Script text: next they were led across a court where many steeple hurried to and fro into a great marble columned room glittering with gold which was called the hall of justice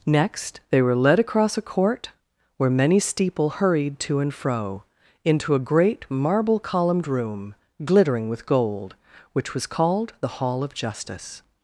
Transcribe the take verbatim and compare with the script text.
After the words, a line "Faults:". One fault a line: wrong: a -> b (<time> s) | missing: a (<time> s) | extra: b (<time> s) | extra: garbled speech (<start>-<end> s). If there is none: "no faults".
next they were led across a court where many steeple hurried to and fro into a great marble columned room glittering with gold which was called the hall of justice
Faults:
no faults